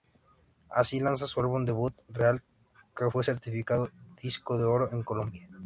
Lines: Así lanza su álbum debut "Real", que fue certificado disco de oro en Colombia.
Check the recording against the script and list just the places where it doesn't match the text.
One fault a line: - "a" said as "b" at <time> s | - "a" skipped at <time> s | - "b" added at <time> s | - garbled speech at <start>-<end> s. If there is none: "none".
none